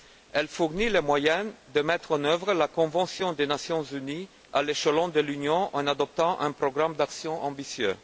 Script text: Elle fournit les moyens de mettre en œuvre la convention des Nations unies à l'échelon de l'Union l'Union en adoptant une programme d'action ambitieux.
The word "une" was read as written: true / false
false